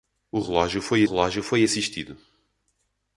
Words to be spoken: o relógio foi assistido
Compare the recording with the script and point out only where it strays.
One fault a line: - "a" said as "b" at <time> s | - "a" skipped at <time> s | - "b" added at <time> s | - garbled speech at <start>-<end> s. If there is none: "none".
- "relógio foi" added at 1.0 s